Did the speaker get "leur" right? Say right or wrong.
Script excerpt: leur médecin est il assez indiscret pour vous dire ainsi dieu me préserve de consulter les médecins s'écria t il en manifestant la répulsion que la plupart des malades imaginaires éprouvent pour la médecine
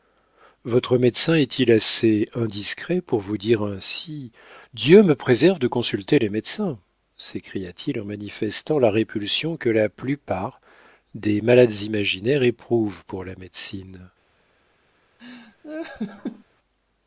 wrong